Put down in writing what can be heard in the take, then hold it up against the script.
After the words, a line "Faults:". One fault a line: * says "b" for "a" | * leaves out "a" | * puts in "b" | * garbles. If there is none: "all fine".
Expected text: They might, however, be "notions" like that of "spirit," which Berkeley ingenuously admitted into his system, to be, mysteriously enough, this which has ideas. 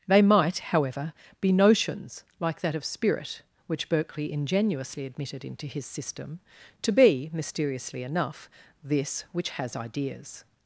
They might, however, be "notions" like that of "spirit," which Berkeley ingenuously admitted into his system, to be, mysteriously enough, this which has ideas.
Faults:
all fine